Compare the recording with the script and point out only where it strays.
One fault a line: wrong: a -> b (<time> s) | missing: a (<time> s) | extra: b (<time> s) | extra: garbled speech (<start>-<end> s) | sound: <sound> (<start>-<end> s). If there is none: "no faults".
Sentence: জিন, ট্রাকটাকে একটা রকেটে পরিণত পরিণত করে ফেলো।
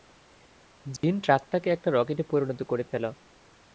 sound: dropout (1.0-1.0 s)
missing: পরিণত (2.6 s)